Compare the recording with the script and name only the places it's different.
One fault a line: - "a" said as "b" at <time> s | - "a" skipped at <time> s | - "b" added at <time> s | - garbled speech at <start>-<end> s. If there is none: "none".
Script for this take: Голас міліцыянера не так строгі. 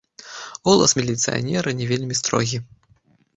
- "так" said as "вельмі" at 1.9 s